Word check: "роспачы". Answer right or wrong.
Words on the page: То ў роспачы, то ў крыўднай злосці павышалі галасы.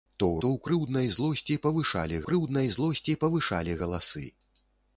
wrong